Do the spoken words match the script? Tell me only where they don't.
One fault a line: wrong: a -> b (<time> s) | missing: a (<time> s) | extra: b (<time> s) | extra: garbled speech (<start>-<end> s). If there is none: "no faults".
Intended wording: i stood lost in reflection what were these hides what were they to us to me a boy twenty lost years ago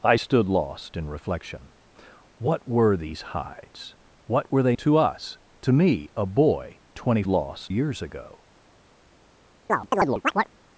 no faults